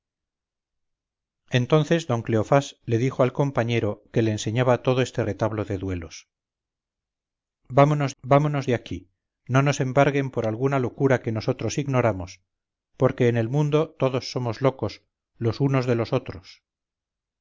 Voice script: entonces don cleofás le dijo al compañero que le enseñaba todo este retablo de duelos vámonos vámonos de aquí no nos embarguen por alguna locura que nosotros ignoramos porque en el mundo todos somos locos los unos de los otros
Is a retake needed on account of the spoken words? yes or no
no